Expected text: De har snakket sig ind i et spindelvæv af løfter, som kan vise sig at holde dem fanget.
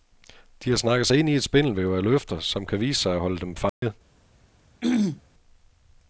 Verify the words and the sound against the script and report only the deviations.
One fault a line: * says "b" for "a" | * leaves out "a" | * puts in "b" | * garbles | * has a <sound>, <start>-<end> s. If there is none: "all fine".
* has a dropout, 3.7-3.8 s
* has a throat clearing, 4.8-5.2 s